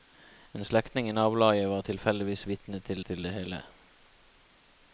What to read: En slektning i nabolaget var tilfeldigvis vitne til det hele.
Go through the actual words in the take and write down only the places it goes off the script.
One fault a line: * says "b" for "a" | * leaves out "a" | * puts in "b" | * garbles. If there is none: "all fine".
* puts in "til"